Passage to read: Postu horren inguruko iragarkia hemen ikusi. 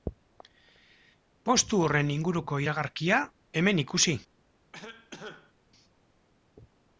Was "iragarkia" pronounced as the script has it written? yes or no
yes